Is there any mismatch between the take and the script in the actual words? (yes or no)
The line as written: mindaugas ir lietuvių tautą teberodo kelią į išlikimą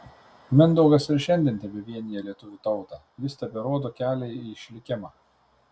yes